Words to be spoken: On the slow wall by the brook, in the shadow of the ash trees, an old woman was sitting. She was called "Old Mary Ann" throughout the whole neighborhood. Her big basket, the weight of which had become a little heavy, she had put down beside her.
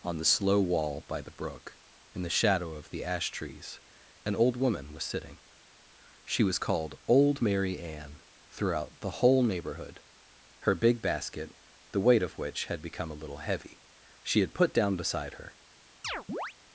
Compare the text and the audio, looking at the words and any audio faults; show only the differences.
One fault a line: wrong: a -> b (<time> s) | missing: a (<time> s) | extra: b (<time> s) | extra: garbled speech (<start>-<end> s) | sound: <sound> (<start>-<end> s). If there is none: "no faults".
sound: chirp (16.0-16.5 s)